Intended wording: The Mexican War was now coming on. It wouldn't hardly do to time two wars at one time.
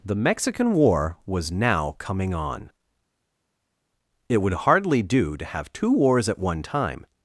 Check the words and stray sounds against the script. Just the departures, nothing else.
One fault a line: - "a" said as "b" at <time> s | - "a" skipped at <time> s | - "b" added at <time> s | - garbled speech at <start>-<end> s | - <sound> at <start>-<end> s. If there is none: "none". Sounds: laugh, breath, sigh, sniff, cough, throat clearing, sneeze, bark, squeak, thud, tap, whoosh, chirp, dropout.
- "wouldn't" said as "would" at 4.4 s
- "time" said as "have" at 5.4 s